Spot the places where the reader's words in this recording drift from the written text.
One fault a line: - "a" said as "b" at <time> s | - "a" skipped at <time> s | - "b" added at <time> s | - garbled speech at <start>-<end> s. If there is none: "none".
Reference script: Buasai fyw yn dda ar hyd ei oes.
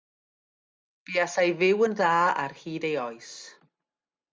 none